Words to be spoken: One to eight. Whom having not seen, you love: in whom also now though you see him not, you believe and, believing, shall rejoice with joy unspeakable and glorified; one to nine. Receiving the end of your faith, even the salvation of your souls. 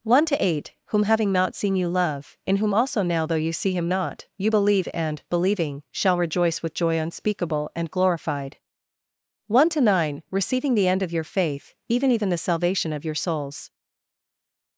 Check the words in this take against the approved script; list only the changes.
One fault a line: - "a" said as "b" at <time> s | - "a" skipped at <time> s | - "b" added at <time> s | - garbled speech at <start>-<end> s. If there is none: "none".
- "even" added at 12.1 s